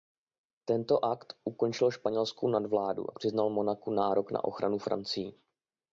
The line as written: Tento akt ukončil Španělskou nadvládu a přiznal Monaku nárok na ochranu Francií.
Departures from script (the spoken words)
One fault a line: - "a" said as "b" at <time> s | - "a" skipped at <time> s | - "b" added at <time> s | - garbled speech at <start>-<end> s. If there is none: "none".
none